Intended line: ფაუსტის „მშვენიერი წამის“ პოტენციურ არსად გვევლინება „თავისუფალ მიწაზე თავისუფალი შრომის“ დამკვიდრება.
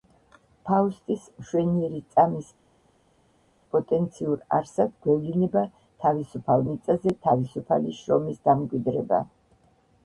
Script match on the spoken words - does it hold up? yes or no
yes